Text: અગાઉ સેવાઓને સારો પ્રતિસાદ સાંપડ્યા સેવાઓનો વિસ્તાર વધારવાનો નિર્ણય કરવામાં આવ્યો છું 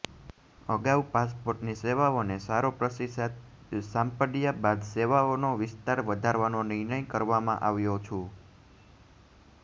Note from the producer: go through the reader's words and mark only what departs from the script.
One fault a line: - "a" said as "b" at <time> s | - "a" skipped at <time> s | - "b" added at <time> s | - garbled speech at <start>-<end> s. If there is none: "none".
- "પાસપોર્ટની" added at 1.1 s
- "બાદ" added at 4.6 s